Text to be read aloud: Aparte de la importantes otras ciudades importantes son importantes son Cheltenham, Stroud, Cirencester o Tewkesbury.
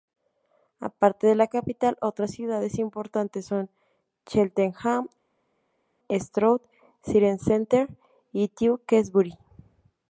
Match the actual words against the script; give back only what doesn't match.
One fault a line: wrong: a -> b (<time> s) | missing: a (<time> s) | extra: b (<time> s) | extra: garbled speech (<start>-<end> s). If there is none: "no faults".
wrong: importantes -> capital (1.4 s)
missing: importantes son (3.7 s)
wrong: o -> y (8.3 s)